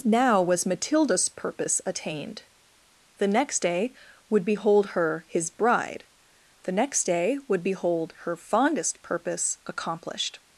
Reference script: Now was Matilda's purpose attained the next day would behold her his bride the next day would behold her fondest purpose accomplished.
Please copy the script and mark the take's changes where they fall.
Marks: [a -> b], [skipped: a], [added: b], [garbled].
Now was Matilda's purpose attained the next day would behold her his bride the next day would behold her fondest purpose accomplished.